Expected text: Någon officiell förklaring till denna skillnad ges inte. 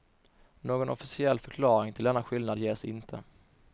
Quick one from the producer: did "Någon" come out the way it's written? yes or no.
yes